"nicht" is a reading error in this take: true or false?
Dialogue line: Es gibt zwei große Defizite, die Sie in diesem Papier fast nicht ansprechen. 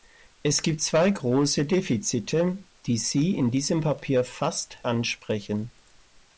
true